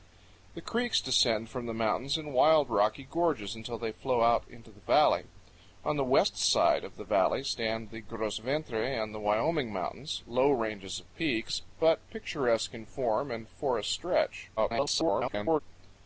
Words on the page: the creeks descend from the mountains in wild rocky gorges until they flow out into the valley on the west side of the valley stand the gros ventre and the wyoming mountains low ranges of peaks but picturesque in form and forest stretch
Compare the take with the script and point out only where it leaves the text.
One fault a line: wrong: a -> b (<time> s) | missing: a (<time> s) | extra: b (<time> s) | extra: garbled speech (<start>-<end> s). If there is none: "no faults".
extra: garbled speech (14.6-15.6 s)